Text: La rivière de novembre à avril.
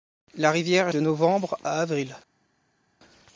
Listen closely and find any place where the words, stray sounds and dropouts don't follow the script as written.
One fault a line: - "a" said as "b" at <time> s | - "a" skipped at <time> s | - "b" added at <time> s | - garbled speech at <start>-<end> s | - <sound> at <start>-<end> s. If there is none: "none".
none